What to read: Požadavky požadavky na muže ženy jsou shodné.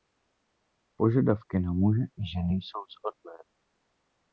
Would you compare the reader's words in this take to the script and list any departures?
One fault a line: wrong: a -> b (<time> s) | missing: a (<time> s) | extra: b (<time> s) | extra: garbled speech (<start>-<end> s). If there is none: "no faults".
missing: požadavky (1.6 s)
extra: i (2.0 s)